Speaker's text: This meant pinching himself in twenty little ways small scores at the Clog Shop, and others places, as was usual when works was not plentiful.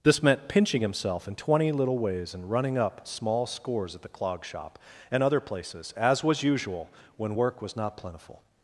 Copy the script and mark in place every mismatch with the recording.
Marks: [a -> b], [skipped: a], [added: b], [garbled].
This meant pinching himself in twenty little ways [added: and running up] small scores at the Clog Shop, and [others -> other] places, as was usual when [works -> work] was not plentiful.